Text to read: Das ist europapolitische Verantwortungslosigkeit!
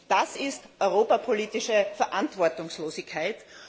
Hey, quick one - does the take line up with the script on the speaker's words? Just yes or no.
yes